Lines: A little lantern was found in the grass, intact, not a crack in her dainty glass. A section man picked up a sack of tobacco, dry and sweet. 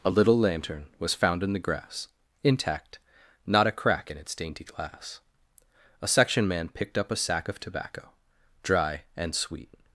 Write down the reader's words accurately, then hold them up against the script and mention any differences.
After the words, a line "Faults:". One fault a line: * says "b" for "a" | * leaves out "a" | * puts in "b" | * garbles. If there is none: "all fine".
A little lantern was found in the grass, intact, not a crack in its dainty glass. A section man picked up a sack of tobacco, dry and sweet.
Faults:
* says "its" for "her"